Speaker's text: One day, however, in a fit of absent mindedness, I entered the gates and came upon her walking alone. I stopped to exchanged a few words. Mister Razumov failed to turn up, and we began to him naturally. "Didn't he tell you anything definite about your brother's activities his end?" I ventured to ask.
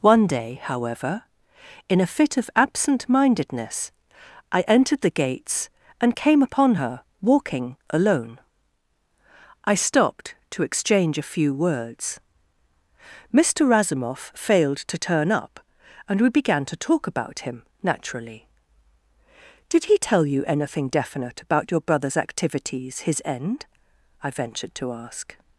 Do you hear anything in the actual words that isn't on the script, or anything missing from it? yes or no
yes